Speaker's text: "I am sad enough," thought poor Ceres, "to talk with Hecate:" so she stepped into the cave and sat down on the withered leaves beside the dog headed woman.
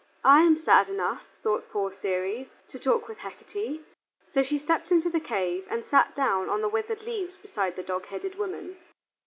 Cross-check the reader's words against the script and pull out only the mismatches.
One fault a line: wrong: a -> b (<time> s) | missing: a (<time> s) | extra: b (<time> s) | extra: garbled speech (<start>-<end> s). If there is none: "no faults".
no faults